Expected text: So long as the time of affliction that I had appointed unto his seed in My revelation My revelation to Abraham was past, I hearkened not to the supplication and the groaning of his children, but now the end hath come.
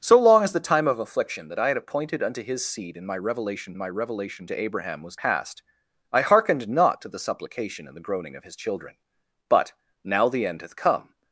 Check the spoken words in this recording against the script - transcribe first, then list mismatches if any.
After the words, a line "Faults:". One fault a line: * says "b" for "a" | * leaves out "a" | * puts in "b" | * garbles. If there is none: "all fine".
So long as the time of affliction that I had appointed unto his seed in My revelation My revelation to Abraham was past, I hearkened not to the supplication and the groaning of his children, but now the end hath come.
Faults:
all fine